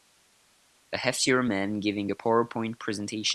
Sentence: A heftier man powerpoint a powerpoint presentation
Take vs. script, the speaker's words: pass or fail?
fail